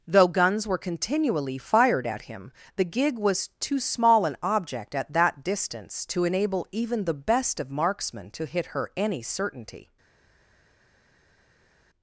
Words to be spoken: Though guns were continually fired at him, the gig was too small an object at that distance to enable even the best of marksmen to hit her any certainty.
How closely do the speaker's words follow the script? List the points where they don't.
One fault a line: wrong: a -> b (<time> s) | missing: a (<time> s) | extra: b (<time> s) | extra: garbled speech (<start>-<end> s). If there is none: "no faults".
no faults